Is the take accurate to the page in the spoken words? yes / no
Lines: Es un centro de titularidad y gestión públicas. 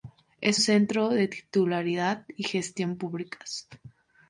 no